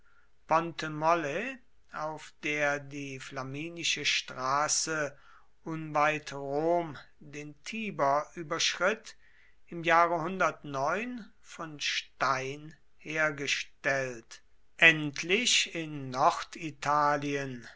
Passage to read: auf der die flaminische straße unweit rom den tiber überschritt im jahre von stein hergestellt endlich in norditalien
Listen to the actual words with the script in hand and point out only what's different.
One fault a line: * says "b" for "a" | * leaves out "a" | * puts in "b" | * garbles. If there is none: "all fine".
all fine